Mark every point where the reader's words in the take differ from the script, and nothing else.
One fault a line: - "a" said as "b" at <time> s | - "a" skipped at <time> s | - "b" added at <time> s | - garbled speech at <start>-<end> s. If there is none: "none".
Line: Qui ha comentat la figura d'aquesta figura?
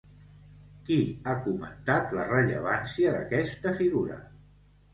- "figura" said as "rellevància" at 2.3 s